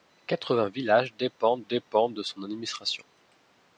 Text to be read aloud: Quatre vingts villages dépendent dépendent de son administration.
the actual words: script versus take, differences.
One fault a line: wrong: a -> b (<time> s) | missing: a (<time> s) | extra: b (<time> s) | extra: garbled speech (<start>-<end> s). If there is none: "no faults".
no faults